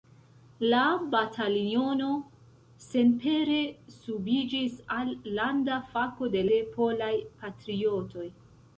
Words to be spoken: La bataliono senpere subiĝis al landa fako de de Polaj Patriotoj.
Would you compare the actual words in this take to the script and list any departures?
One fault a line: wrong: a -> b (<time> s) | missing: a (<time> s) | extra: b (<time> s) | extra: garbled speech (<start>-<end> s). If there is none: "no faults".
no faults